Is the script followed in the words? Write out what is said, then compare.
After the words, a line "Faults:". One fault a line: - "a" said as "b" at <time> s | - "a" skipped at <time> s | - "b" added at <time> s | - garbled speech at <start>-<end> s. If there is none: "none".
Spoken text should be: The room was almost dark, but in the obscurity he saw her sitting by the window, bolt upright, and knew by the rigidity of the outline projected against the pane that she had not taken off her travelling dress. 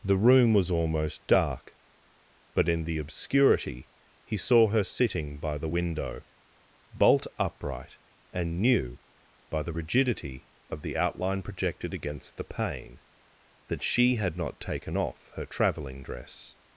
The room was almost dark, but in the obscurity he saw her sitting by the window, bolt upright, and knew by the rigidity of the outline projected against the pane that she had not taken off her travelling dress.
Faults:
none